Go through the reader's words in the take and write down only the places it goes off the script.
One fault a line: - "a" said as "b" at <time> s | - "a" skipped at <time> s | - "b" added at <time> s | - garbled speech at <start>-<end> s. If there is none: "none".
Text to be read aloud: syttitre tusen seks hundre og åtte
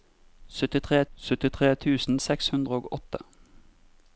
- "syttitre" added at 1.1 s